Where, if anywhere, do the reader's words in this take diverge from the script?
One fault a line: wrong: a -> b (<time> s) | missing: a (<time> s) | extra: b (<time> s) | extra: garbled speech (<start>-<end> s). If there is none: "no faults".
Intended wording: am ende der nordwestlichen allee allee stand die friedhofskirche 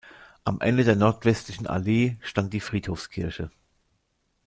missing: allee (2.2 s)